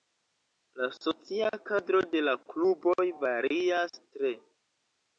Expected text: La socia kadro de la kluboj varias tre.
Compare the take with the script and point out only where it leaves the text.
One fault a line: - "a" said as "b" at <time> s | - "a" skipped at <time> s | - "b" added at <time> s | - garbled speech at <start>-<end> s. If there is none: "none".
none